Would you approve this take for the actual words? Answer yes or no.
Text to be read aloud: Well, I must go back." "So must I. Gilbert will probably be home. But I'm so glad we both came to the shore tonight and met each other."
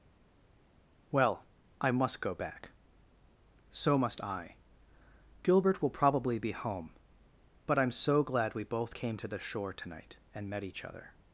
yes